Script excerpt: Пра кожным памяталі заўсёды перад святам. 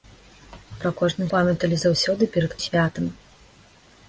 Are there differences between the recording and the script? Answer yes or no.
no